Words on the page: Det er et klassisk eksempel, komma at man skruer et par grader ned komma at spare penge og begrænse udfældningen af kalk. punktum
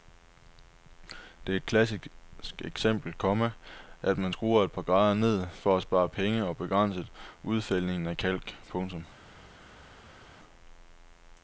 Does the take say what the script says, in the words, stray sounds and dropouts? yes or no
no